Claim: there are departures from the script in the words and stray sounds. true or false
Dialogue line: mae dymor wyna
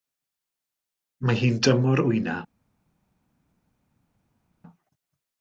true